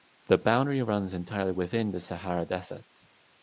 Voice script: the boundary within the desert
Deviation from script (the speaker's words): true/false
true